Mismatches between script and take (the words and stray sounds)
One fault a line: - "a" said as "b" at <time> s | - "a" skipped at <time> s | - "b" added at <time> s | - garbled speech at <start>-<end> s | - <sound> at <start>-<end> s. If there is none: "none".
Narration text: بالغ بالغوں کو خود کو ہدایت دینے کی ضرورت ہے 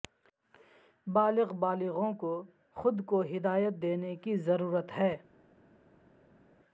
none